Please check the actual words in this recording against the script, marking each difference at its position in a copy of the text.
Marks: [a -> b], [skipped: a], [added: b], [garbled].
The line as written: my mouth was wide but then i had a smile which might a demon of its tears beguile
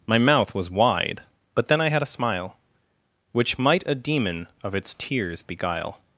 my mouth was wide but then i had a smile which might a demon of its tears beguile